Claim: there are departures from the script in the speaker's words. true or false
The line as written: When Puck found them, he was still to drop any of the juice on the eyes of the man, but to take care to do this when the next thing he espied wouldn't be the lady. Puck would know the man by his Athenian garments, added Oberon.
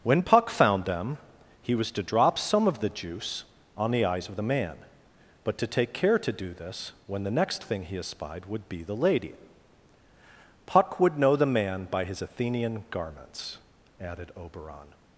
true